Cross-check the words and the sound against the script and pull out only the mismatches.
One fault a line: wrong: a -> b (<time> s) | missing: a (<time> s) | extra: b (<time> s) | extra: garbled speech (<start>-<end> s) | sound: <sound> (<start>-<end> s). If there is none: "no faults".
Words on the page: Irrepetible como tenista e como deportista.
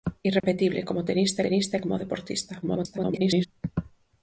sound: dropout (0.4-0.4 s)
extra: tenista (1.4 s)
extra: garbled speech (2.6-3.5 s)